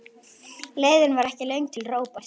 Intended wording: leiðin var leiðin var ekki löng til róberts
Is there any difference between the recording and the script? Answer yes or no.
yes